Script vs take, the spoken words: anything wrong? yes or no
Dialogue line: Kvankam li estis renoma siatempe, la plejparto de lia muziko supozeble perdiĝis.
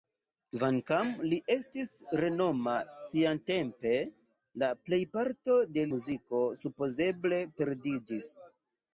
yes